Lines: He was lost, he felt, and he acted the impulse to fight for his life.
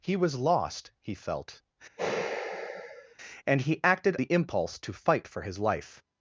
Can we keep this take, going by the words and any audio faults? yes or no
no